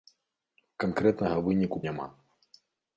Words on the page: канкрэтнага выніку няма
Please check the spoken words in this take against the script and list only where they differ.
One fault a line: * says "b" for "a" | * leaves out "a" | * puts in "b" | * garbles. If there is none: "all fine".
all fine